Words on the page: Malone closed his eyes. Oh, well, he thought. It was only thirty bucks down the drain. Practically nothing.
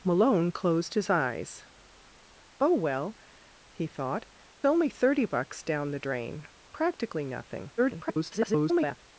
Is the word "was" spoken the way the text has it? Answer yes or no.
no